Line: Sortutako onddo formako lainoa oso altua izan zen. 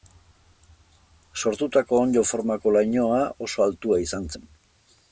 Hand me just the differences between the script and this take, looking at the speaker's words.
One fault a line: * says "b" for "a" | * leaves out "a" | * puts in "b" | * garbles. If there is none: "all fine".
all fine